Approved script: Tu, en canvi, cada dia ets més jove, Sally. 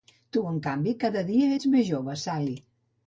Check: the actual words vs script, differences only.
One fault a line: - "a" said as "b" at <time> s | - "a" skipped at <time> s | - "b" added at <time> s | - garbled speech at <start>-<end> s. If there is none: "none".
none